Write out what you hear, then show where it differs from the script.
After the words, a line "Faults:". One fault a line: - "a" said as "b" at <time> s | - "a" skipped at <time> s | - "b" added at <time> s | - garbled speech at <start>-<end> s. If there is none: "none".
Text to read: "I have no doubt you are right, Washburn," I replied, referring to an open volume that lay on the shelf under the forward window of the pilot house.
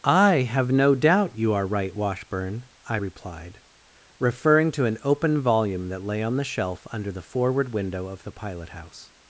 "I have no doubt you are right, Washburn," I replied, referring to an open volume that lay on the shelf under the forward window of the pilot house.
Faults:
none